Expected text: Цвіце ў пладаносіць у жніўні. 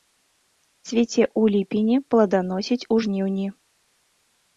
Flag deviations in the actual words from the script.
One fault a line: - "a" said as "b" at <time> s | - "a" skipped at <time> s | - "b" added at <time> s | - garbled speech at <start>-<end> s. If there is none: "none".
- "ліпені" added at 1.6 s